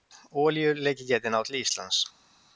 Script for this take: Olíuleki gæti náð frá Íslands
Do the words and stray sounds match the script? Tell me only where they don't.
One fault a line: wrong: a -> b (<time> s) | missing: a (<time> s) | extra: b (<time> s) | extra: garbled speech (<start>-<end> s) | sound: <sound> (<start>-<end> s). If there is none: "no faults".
wrong: frá -> til (1.5 s)